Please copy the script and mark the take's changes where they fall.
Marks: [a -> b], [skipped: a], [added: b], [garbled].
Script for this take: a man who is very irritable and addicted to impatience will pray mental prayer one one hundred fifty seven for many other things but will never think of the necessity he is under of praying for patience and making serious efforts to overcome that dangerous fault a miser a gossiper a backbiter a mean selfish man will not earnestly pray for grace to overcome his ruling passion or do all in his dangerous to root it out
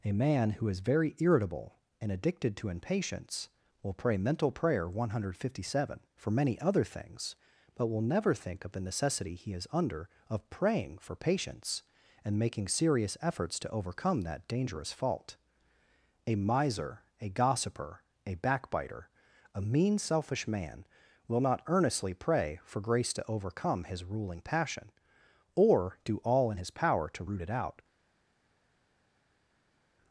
a man who is very irritable and addicted to impatience will pray mental prayer one [skipped: one] hundred fifty seven for many other things but will never think of the necessity he is under of praying for patience and making serious efforts to overcome that dangerous fault a miser a gossiper a backbiter a mean selfish man will not earnestly pray for grace to overcome his ruling passion or do all in his [dangerous -> power] to root it out